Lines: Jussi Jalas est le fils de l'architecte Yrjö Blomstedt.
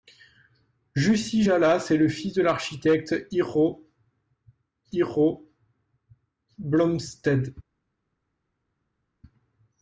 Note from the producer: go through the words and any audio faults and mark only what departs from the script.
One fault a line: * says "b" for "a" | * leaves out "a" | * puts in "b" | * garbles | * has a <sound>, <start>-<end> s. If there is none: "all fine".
* puts in "Yrjö"